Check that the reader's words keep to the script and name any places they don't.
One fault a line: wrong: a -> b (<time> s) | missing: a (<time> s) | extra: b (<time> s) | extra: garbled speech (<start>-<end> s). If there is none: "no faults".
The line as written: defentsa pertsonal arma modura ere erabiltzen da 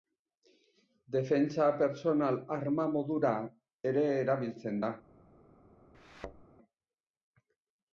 no faults